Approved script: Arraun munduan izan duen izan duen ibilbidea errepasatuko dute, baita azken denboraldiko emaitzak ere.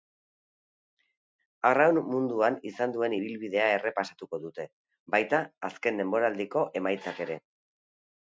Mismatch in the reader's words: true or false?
true